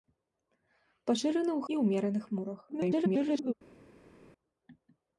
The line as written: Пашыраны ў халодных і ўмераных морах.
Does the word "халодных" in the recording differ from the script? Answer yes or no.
yes